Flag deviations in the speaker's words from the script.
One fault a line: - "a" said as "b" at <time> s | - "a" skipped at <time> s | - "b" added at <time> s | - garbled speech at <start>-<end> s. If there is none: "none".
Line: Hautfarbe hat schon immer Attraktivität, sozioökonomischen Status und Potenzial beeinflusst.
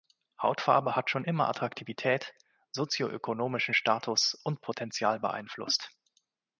none